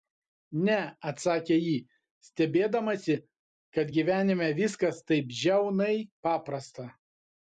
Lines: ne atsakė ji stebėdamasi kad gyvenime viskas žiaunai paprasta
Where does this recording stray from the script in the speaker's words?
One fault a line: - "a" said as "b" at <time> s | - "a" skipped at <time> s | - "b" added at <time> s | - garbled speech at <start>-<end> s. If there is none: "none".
- "taip" added at 5.1 s